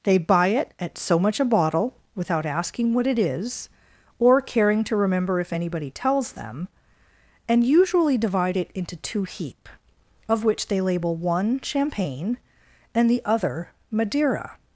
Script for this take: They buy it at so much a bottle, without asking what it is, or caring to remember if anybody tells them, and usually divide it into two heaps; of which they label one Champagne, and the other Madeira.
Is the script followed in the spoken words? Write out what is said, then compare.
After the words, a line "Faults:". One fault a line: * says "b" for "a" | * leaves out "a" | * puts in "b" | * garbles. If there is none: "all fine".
They buy it at so much a bottle, without asking what it is, or caring to remember if anybody tells them, and usually divide it into two heap; of which they label one Champagne, and the other Madeira.
Faults:
* says "heap" for "heaps"